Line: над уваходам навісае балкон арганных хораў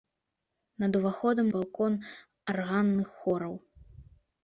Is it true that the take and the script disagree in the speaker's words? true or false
true